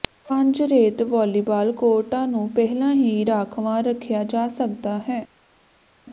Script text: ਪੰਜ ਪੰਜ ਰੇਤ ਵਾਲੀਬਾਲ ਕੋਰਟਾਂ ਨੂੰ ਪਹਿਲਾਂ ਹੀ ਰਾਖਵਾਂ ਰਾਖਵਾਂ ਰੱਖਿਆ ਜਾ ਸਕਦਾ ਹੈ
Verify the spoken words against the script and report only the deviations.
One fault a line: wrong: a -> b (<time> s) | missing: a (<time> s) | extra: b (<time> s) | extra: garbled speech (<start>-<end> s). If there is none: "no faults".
missing: ਪੰਜ (0.6 s)
missing: ਰਾਖਵਾਂ (3.8 s)